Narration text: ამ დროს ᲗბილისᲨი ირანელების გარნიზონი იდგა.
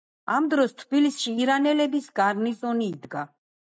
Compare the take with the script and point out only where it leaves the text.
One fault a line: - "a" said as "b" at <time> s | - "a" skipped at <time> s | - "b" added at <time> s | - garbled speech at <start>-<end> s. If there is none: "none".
none